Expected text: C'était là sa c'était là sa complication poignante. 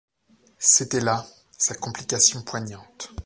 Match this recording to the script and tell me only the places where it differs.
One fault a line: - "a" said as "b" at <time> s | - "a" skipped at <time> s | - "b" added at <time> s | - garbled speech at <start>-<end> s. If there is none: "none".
- "c'était là sa" skipped at 1.8 s